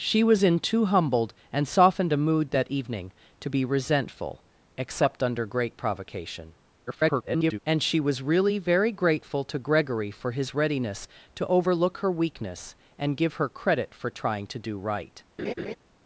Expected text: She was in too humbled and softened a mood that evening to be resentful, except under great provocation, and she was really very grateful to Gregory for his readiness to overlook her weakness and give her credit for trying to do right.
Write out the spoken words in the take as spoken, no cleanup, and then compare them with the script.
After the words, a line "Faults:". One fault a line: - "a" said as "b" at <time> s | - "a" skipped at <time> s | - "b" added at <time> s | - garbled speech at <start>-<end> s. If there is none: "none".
She was in too humbled and softened a mood that evening to be resentful, except under great provocation, [garbled] and she was really very grateful to Gregory for his readiness to overlook her weakness and give her credit for trying to do right.
Faults:
- garbled speech at 6.9-7.6 s